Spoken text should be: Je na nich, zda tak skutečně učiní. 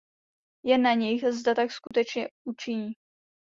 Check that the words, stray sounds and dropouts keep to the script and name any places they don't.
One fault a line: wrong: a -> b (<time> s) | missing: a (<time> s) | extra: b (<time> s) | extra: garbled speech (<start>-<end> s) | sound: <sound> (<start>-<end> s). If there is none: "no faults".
sound: dropout (1.9-1.9 s)